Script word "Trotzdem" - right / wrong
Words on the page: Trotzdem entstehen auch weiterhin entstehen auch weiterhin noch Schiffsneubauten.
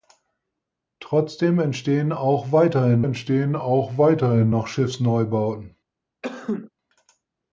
right